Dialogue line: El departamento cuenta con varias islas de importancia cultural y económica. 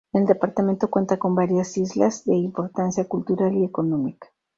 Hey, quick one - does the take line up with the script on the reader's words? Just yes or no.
yes